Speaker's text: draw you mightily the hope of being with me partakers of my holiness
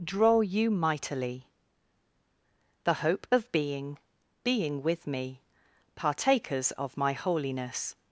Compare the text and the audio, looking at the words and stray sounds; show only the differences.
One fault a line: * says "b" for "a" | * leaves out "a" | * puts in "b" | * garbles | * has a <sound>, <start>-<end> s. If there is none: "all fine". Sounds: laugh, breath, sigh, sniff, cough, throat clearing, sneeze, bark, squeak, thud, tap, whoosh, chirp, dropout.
* puts in "being"